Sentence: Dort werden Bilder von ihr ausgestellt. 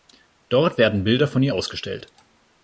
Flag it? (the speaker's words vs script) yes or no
no